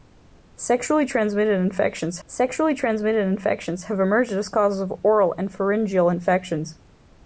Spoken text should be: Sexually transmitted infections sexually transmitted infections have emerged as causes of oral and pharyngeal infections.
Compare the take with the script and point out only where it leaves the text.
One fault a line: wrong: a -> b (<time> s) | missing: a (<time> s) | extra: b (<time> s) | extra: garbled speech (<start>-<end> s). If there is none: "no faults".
no faults